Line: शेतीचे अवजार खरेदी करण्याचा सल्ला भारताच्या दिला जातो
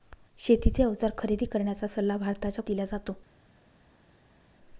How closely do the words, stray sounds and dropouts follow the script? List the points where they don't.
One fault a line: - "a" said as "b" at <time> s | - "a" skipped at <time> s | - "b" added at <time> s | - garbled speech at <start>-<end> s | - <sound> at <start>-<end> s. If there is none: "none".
none